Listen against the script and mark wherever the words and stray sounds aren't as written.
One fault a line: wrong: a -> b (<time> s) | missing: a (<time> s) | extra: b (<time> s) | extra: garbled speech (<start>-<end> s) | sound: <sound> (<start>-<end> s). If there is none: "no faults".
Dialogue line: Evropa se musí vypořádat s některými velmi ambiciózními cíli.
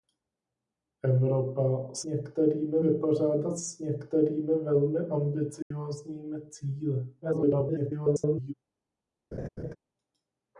wrong: musí -> některými (2.0 s)
sound: dropout (5.6-5.7 s)
extra: garbled speech (7.2-8.5 s)
sound: laugh (9.3-9.8 s)